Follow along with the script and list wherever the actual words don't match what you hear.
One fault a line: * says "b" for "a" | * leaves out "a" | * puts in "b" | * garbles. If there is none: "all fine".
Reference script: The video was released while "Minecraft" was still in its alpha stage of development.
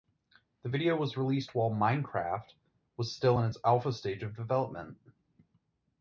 all fine